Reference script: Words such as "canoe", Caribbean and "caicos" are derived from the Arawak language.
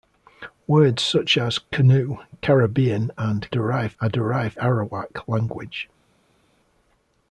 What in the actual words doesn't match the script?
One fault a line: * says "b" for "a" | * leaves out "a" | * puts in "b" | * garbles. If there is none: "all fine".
* says "derived" for "caicos"
* leaves out "from the"